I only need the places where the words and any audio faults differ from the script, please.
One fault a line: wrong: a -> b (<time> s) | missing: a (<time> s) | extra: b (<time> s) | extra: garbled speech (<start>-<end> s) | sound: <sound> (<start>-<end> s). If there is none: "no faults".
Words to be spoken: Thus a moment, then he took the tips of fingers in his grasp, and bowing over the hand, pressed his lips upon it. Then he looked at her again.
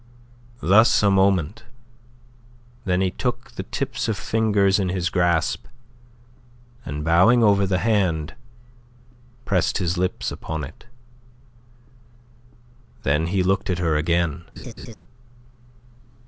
sound: laugh (14.6-14.9 s)